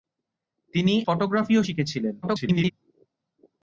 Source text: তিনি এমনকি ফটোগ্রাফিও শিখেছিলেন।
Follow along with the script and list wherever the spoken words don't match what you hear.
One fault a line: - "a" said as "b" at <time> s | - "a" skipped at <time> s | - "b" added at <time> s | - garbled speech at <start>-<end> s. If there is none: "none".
- "এমনকি" skipped at 0.9 s
- garbled speech at 2.2-2.7 s